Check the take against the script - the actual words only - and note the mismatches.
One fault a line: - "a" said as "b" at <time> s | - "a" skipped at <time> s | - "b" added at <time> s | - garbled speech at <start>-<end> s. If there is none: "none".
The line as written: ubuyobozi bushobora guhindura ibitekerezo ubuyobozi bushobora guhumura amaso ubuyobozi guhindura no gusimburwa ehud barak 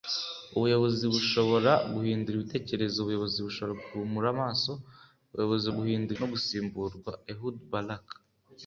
none